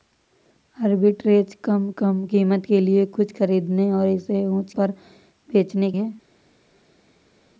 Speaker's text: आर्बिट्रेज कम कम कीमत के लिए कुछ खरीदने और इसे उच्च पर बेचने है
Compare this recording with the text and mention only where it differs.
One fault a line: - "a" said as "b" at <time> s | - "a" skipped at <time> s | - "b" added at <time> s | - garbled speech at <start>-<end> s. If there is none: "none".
none